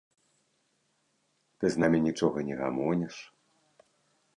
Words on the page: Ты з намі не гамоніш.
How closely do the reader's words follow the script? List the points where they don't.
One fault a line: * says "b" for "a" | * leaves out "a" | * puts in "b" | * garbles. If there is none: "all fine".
* puts in "нічога"